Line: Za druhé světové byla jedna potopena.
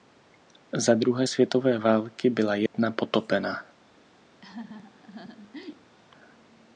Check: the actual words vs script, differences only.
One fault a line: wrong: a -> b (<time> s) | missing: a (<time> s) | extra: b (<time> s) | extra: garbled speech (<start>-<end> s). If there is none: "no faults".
extra: války (1.8 s)